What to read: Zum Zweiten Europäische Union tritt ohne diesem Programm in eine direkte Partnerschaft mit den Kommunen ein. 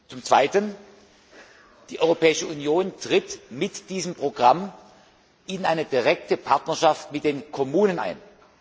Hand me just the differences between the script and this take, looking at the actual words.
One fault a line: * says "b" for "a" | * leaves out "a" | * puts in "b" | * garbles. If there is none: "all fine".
* puts in "Die"
* says "mit" for "ohne"